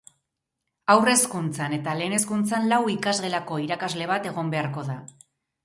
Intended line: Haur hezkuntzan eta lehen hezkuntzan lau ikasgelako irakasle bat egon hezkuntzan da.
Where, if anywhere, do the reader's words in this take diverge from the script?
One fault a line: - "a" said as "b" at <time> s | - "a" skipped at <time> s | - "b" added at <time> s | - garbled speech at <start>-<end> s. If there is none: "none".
- "hezkuntzan" said as "beharko" at 4.6 s